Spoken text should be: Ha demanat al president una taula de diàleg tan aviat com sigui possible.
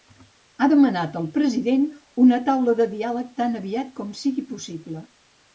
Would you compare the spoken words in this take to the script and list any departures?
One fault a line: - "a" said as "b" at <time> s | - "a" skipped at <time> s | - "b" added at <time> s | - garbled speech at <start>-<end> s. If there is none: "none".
none